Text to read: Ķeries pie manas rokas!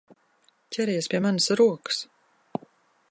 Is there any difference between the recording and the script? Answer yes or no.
no